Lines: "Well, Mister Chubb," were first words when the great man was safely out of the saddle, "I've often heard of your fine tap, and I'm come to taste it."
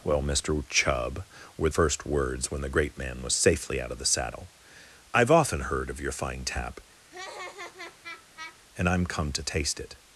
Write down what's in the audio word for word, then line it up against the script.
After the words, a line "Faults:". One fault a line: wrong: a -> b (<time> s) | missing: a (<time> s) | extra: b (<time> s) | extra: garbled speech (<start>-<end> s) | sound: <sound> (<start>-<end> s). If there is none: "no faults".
"Well, Mister Chubb," were first words when the great man was safely out of the saddle, "I've often heard of your fine tap, and I'm come to taste it."
Faults:
sound: laugh (7.1-8.6 s)